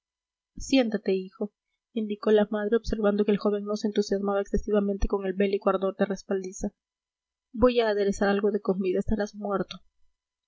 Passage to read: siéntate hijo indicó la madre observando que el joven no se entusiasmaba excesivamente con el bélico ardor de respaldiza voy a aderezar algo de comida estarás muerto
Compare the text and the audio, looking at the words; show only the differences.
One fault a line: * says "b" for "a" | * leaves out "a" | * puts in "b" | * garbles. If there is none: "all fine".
all fine